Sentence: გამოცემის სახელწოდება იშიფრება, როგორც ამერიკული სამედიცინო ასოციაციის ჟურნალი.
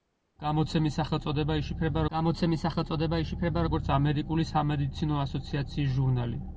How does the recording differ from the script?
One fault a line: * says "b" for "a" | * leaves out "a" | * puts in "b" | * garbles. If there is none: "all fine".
* puts in "გამოცემის სახელწოდება იშიფრება"